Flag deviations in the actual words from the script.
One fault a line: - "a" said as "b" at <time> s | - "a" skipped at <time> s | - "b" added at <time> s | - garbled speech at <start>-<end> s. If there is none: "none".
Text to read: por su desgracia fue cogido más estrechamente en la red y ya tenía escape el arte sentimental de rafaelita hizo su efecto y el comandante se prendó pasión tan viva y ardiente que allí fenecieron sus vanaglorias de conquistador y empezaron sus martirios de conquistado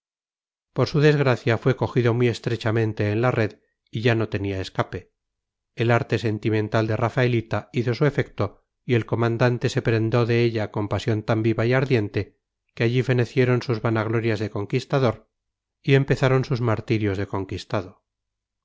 - "más" said as "muy" at 2.1 s
- "no" added at 4.2 s
- "de ella con" added at 10.2 s